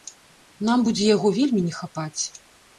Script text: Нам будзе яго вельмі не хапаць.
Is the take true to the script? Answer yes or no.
yes